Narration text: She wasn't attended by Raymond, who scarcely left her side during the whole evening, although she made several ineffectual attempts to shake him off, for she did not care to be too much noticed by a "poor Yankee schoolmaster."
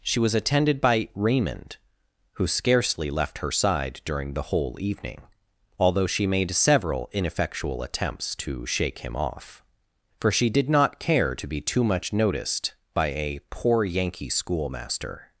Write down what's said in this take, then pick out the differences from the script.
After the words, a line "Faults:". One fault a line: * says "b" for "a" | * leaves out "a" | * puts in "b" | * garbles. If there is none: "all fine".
She was attended by Raymond, who scarcely left her side during the whole evening, although she made several ineffectual attempts to shake him off, for she did not care to be too much noticed by a "poor Yankee schoolmaster."
Faults:
* says "was" for "wasn't"